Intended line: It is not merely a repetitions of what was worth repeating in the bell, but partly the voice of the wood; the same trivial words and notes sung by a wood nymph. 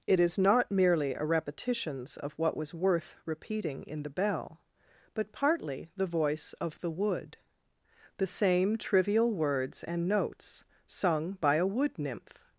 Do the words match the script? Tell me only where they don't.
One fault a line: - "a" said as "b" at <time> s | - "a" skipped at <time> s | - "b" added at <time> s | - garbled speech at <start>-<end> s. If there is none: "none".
none